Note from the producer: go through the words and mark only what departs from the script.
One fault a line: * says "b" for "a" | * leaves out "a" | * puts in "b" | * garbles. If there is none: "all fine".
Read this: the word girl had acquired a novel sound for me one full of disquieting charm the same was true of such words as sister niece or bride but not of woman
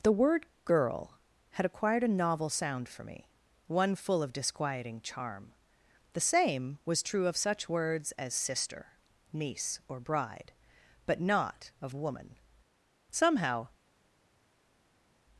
* puts in "somehow"